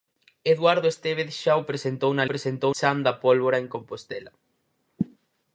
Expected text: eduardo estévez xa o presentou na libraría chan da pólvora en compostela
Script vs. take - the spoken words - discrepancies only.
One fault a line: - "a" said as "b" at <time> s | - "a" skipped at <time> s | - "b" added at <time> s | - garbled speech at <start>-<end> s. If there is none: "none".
- "libraría" said as "presentou" at 2.3 s